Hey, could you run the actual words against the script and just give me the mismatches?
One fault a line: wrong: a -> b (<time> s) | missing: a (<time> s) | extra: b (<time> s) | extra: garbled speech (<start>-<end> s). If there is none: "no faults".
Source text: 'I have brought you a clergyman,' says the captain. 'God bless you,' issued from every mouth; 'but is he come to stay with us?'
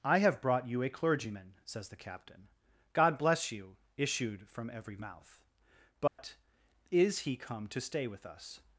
no faults